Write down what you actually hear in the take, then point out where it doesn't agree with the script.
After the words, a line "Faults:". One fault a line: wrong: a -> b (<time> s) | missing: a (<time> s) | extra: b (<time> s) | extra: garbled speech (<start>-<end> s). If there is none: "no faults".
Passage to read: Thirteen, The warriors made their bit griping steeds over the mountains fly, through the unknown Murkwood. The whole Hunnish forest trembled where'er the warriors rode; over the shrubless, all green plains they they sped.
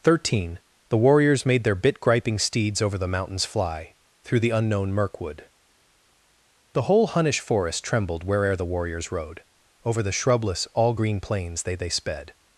Thirteen, The warriors made their bit griping steeds over the mountains fly, through the unknown Murkwood. The whole Hunnish forest trembled where'er the warriors rode; over the shrubless, all green plains they they sped.
Faults:
no faults